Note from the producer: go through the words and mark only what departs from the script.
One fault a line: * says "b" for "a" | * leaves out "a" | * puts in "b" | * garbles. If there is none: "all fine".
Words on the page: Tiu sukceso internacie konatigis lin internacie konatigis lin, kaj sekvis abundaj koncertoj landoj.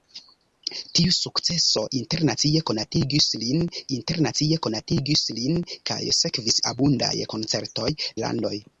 all fine